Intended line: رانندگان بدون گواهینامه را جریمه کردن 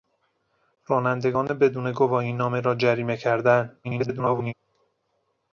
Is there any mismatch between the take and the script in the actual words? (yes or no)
yes